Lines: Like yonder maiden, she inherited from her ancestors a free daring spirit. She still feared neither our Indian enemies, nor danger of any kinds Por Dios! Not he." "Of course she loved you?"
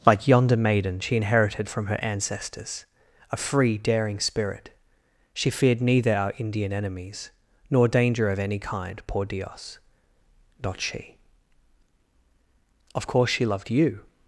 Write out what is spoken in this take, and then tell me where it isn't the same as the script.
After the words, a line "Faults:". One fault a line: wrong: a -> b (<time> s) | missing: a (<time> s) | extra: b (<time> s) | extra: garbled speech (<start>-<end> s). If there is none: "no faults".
Like yonder maiden, she inherited from her ancestors a free daring spirit. She feared neither our Indian enemies, nor danger of any kind Por Dios! Not she." "Of course she loved you?"
Faults:
missing: still (5.5 s)
wrong: kinds -> kind (8.6 s)
wrong: he -> she (10.8 s)